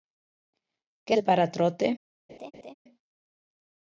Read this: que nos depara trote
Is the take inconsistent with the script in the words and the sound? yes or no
yes